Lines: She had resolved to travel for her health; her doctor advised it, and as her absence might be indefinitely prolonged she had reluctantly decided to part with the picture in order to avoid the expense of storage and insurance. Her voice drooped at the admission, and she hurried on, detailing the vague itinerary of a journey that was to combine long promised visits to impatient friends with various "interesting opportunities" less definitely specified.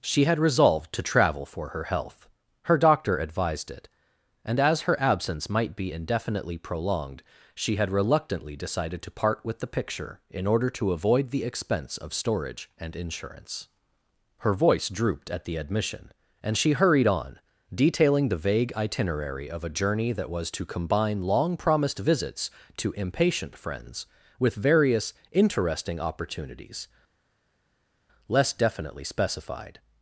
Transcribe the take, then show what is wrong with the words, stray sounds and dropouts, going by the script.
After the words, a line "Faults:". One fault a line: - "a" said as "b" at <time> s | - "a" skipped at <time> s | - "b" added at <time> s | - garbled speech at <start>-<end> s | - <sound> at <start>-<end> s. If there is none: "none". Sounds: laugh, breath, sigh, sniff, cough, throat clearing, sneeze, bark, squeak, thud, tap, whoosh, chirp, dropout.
She had resolved to travel for her health; her doctor advised it, and as her absence might be indefinitely prolonged she had reluctantly decided to part with the picture in order to avoid the expense of storage and insurance. Her voice drooped at the admission, and she hurried on, detailing the vague itinerary of a journey that was to combine long promised visits to impatient friends with various "interesting opportunities" less definitely specified.
Faults:
none